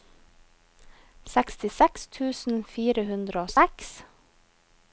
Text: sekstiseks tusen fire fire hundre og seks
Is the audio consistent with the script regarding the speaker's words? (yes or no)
no